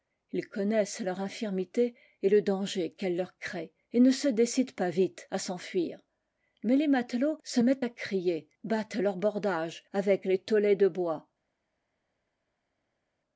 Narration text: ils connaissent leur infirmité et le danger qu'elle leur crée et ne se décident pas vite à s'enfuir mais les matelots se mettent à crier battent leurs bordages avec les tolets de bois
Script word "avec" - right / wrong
right